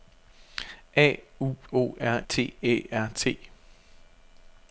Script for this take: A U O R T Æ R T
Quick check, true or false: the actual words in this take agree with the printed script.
true